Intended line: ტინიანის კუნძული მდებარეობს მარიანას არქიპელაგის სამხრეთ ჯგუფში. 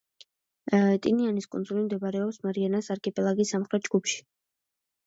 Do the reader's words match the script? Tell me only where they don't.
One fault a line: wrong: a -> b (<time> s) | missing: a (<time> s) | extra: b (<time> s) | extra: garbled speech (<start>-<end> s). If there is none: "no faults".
no faults